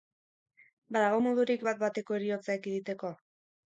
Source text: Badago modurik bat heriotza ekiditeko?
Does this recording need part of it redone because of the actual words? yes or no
yes